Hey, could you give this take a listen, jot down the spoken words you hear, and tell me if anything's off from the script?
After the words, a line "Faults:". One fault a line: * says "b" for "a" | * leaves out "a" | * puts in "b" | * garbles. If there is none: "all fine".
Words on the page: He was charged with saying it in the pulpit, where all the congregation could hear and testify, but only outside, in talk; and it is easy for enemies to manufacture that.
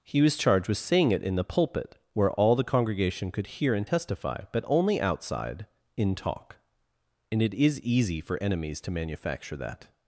He was charged with saying it in the pulpit, where all the congregation could hear and testify, but only outside, in talk; and it is easy for enemies to manufacture that.
Faults:
all fine